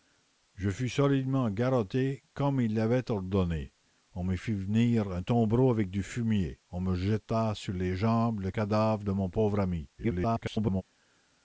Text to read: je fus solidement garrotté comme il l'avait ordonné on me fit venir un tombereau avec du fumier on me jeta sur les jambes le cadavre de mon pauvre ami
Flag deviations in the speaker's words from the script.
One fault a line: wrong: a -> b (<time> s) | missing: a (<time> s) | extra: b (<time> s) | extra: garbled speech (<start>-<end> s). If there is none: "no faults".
extra: garbled speech (10.0-10.8 s)